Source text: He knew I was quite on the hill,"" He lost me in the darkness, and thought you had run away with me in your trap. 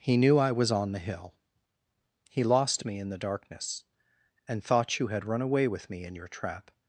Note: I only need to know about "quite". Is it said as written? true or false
false